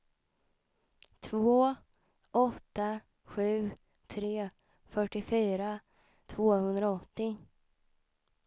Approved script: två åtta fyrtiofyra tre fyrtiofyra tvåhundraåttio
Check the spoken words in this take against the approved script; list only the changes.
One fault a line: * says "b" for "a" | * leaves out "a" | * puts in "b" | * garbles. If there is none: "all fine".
* says "sju" for "fyrtiofyra"